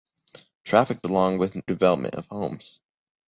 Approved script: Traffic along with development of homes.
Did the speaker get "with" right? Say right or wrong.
right